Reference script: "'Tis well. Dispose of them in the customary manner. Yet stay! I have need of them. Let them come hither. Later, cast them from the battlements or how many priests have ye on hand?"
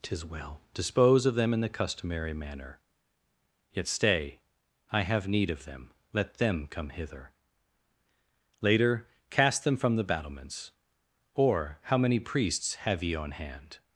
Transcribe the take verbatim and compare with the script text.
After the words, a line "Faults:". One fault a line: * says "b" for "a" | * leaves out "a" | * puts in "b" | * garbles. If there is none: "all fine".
"'Tis well. Dispose of them in the customary manner. Yet stay! I have need of them. Let them come hither. Later, cast them from the battlements or how many priests have ye on hand?"
Faults:
all fine